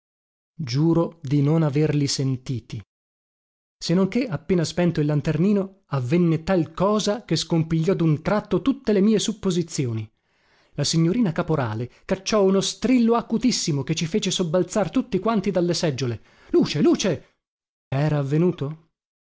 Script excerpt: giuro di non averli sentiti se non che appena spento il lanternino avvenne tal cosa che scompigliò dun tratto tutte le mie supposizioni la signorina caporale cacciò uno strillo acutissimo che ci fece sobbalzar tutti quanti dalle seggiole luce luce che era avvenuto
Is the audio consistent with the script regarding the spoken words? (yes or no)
no